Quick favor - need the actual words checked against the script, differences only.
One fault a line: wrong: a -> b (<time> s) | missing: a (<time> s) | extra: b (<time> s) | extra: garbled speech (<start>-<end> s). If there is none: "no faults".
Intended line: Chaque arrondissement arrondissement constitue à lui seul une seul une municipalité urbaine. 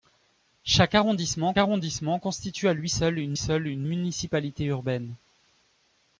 no faults